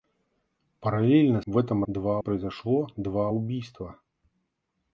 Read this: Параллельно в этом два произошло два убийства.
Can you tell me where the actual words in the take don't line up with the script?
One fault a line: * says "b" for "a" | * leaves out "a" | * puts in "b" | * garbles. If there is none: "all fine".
all fine